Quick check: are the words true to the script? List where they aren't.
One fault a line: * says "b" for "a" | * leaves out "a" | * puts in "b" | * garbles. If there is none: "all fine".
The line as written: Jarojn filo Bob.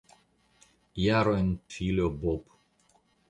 all fine